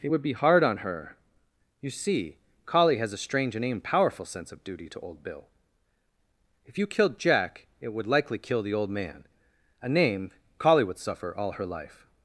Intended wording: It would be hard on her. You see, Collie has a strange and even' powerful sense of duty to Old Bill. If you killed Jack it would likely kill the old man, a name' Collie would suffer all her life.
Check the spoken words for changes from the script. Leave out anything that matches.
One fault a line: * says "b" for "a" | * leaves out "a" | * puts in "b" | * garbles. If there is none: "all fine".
all fine